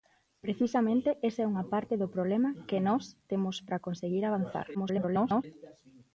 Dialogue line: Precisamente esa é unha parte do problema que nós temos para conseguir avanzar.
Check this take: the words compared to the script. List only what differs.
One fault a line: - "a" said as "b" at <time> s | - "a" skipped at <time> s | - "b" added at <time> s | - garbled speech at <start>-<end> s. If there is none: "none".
- garbled speech at 4.7-5.4 s